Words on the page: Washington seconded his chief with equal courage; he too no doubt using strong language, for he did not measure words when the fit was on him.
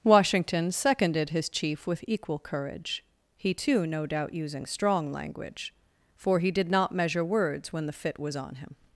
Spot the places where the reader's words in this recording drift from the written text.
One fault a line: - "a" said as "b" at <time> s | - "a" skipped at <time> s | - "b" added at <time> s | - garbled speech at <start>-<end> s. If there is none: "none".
none